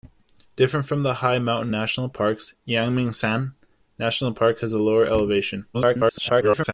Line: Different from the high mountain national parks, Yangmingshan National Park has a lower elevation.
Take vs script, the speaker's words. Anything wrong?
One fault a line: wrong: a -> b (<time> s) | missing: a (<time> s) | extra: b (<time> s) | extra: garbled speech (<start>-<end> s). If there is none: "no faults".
extra: garbled speech (5.7-6.7 s)